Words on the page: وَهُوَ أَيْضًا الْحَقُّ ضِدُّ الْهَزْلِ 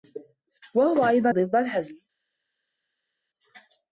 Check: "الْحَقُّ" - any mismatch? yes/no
yes